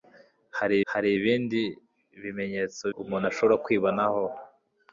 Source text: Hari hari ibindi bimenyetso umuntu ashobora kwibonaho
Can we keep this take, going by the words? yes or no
yes